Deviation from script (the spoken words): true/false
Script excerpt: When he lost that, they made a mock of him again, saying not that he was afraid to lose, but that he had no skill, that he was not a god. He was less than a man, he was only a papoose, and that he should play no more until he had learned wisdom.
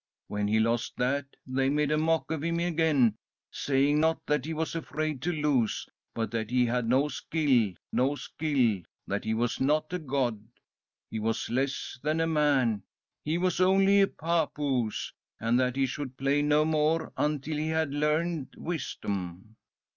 true